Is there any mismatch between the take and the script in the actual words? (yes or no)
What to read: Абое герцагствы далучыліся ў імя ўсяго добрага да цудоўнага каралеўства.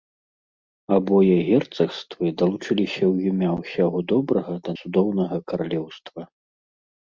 no